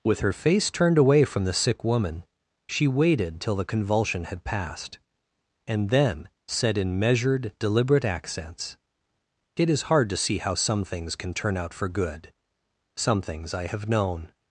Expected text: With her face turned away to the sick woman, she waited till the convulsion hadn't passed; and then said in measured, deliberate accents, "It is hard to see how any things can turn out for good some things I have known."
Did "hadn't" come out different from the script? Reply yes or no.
yes